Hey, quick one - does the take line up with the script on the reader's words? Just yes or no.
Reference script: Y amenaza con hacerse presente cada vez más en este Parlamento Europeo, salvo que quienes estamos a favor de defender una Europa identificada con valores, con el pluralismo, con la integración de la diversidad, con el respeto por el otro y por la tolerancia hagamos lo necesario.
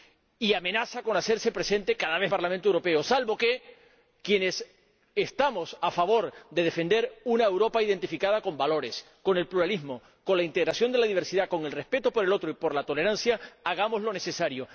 no